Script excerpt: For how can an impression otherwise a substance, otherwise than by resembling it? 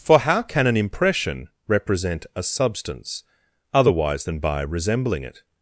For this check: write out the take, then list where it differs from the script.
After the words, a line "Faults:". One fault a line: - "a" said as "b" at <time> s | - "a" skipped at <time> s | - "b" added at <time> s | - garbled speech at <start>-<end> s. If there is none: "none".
For how can an impression represent a substance, otherwise than by resembling it?
Faults:
- "otherwise" said as "represent" at 1.7 s